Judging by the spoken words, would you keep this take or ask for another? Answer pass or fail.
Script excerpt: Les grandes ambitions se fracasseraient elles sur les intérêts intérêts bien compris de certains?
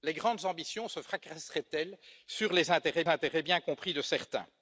pass